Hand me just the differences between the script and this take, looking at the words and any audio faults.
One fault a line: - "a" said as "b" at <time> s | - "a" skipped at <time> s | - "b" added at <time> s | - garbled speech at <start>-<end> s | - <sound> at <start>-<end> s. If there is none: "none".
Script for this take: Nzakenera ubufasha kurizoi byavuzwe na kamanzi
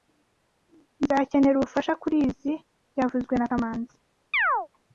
- chirp at 4.3-4.7 s